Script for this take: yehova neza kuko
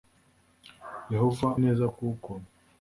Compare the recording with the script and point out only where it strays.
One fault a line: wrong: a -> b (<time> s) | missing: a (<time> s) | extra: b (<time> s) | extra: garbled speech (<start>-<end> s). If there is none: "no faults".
no faults